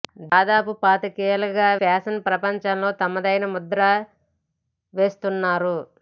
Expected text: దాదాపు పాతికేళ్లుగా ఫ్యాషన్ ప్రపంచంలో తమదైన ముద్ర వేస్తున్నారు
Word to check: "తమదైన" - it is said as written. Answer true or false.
true